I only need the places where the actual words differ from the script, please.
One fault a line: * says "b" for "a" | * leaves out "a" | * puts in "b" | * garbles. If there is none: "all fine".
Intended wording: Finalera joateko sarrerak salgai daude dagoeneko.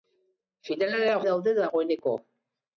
* leaves out "joateko sarrerak salgai"